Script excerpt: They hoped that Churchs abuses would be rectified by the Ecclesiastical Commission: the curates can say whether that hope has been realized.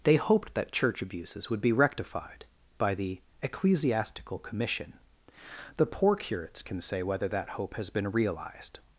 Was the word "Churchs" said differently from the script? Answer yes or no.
yes